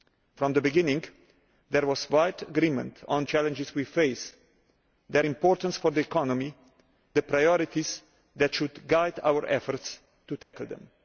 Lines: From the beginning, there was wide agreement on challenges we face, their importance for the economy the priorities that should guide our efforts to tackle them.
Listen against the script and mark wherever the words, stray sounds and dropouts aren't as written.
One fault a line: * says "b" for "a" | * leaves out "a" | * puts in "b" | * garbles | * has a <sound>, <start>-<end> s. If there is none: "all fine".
* has a dropout, 10.4-10.5 s